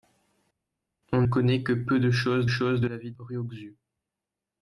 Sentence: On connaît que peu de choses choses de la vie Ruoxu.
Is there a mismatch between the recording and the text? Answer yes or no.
no